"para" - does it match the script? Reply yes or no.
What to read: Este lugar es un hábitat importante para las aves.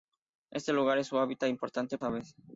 no